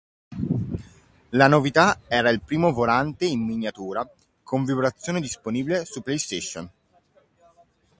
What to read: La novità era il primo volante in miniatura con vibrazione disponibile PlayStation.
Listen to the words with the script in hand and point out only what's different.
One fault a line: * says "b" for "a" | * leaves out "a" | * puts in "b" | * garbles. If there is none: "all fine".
* puts in "su"